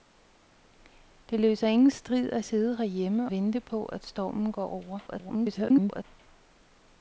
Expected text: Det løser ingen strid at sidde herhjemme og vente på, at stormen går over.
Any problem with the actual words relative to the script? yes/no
yes